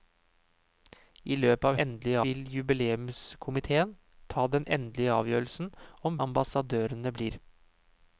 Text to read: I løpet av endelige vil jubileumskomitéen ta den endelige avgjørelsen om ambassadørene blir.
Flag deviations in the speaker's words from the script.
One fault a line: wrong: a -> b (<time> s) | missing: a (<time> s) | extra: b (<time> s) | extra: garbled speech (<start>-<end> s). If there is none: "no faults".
no faults